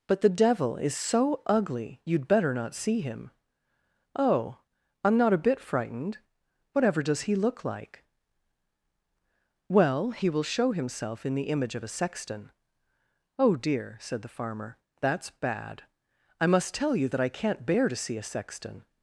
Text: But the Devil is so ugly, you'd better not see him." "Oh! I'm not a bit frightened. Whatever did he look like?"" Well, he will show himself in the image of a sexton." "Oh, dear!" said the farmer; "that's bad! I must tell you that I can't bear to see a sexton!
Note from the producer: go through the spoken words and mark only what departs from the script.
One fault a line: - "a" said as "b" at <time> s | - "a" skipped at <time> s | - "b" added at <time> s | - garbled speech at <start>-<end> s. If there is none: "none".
- "did" said as "does" at 7.0 s